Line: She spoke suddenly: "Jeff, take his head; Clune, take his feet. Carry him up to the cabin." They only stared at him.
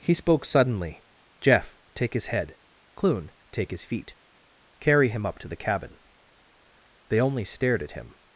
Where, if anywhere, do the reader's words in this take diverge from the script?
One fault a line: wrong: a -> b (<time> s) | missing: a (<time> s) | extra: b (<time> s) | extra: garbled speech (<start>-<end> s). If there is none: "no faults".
wrong: She -> He (0.0 s)